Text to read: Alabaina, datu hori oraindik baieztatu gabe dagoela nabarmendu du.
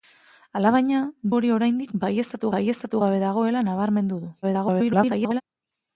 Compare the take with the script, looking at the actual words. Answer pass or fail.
fail